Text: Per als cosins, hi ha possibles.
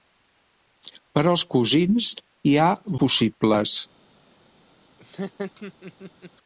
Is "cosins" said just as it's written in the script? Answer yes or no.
yes